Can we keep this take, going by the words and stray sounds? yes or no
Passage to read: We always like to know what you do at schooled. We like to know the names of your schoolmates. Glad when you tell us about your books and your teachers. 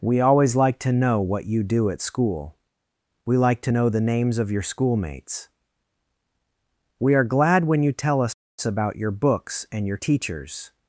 no